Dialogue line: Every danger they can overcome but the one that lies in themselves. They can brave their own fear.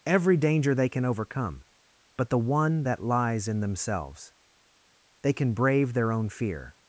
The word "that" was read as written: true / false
true